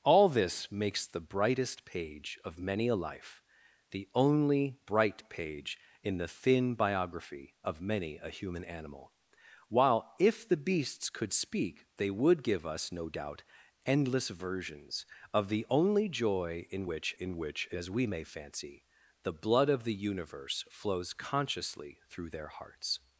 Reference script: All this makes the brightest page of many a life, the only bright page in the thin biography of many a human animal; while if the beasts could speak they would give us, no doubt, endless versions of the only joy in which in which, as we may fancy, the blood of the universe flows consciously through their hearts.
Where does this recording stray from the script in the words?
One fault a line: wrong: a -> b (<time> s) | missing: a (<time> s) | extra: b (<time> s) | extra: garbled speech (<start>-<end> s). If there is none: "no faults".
no faults